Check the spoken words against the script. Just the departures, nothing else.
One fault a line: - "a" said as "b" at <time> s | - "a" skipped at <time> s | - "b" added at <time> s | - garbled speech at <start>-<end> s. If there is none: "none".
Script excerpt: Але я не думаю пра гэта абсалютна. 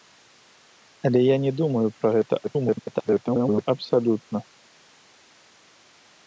- garbled speech at 2.4-3.7 s